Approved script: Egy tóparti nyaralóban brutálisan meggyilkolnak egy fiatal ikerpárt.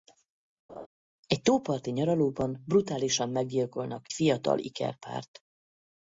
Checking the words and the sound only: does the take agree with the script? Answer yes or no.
no